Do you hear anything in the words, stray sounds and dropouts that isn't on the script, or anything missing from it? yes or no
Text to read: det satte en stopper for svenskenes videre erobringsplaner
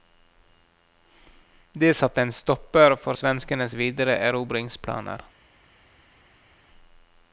no